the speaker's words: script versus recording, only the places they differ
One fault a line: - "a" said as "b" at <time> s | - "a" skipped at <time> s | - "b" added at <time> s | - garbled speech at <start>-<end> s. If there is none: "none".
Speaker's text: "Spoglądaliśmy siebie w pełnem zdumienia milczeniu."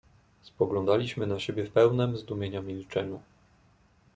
- "na" added at 1.3 s